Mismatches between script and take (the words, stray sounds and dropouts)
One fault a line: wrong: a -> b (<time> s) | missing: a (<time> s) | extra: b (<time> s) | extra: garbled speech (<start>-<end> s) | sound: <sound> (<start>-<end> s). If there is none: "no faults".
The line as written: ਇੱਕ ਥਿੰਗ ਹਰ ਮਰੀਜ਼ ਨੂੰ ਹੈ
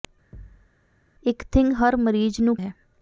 sound: thud (0.3-0.7 s)